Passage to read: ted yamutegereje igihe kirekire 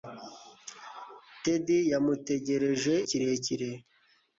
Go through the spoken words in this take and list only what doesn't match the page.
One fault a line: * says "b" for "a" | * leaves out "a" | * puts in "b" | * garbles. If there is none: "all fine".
* leaves out "igihe"